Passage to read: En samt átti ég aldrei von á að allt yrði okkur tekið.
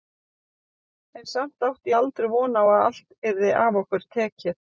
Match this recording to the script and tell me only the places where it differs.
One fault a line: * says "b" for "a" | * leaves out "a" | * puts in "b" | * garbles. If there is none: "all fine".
* puts in "af"